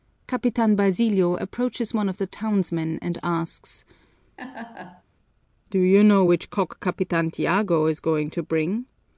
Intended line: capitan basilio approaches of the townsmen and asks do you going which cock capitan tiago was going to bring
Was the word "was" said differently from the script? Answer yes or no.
yes